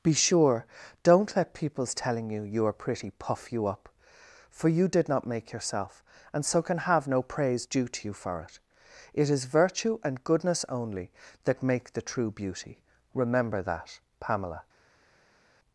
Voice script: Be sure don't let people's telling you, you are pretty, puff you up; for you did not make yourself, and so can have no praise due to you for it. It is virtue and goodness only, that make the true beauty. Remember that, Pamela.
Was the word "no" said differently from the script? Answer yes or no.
no